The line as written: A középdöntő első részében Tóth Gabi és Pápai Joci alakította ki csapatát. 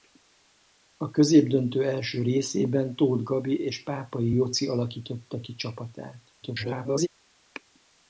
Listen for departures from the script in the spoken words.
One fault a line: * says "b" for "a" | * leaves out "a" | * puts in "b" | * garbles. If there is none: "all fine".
* garbles